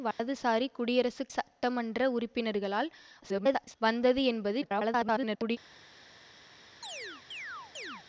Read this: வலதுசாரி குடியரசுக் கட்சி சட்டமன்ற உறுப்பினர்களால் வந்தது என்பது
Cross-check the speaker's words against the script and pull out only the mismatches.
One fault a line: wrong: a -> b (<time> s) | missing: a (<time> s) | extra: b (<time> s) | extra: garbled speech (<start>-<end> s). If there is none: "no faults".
missing: கட்சி (1.3 s)
extra: garbled speech (3.2-3.8 s)
extra: garbled speech (4.6-5.6 s)